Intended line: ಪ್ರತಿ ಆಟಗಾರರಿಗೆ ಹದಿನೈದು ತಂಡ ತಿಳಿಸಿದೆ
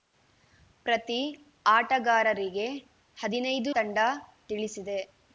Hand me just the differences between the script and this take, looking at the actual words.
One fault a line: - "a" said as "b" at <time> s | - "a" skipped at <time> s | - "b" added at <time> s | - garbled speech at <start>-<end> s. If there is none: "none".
none